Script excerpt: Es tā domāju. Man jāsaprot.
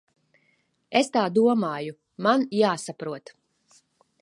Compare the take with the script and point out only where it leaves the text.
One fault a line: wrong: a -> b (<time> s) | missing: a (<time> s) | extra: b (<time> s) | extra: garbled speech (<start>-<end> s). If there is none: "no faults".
no faults